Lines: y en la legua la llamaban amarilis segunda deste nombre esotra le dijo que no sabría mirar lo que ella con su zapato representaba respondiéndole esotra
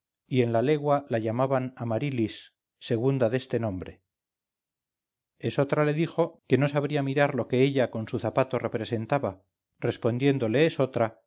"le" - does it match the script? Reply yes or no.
yes